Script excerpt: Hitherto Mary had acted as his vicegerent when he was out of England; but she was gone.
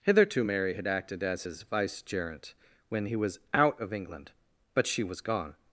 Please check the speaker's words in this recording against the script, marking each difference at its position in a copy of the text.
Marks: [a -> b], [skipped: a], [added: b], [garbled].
Hitherto Mary had acted as his vicegerent when he was out of England; but she was gone.